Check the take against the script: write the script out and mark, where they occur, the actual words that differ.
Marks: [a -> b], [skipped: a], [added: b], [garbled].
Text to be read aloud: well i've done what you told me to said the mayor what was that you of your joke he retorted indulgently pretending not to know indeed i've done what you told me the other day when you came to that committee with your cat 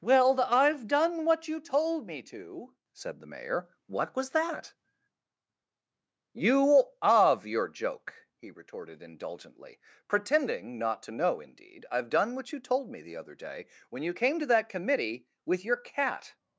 well i've done what you told me to said the mayor what was that you of your joke he retorted indulgently pretending not to know indeed i've done what you told me the other day when you came to that committee with your cat